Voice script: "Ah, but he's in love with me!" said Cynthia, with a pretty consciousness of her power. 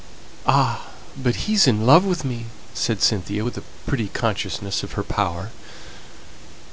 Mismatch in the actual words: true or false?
false